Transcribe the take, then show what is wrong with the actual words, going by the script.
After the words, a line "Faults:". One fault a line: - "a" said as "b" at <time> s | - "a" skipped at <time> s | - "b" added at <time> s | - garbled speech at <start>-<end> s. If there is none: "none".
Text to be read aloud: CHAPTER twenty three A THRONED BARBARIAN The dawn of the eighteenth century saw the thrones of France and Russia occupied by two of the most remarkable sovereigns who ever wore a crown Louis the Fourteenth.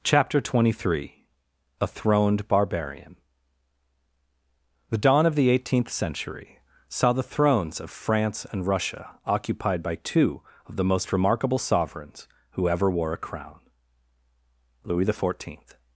CHAPTER twenty three A THRONED BARBARIAN The dawn of the eighteenth century saw the thrones of France and Russia occupied by two of the most remarkable sovereigns who ever wore a crown Louis the Fourteenth.
Faults:
none